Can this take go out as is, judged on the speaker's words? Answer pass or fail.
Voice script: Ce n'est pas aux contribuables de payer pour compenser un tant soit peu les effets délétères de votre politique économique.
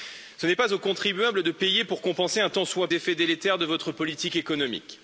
fail